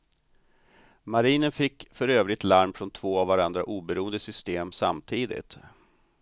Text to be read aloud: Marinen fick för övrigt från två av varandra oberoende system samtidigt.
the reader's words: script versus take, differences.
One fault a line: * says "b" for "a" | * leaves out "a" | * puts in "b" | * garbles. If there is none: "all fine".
* puts in "larm"